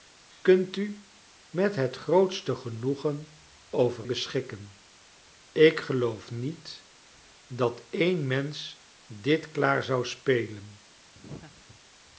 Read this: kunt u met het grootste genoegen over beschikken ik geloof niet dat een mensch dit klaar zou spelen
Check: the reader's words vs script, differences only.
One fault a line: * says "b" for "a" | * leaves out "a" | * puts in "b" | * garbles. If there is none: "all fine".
all fine